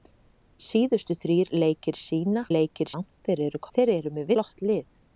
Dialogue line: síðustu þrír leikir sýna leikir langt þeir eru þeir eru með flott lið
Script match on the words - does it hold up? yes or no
yes